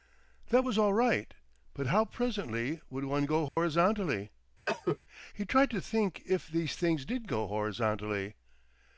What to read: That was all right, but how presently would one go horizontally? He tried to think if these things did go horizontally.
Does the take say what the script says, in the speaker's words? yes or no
yes